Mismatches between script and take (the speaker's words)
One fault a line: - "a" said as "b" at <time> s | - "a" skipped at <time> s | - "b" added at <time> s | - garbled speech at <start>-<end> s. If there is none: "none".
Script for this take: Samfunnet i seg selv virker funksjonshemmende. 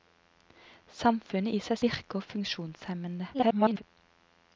- "selv" skipped at 1.8 s
- garbled speech at 3.3-3.8 s